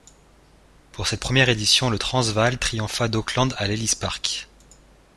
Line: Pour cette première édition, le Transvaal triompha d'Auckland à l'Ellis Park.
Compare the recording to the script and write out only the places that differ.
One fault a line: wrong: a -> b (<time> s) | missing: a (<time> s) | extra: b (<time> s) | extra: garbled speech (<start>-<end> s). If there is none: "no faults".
no faults